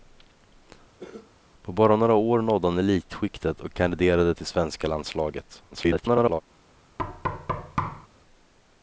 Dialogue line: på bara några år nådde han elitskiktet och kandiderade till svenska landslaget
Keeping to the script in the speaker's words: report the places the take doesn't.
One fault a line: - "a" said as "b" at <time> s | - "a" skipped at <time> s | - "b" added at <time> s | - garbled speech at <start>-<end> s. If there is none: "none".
- garbled speech at 5.7-6.4 s